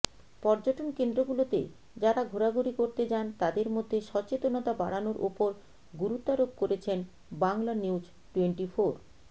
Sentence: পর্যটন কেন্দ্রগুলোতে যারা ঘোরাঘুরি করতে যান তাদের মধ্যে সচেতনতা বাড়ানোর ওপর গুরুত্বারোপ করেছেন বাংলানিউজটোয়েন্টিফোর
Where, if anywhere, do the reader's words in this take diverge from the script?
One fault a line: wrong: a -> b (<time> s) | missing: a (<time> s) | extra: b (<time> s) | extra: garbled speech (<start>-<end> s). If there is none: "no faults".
no faults